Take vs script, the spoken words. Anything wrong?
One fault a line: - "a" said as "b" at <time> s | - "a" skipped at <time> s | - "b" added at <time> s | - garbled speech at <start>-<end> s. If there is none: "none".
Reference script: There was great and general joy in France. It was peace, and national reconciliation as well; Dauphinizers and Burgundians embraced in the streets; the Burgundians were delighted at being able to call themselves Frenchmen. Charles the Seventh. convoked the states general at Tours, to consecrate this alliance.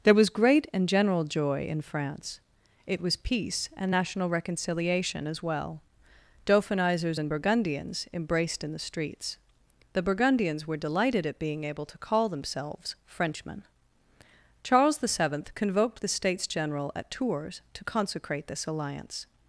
none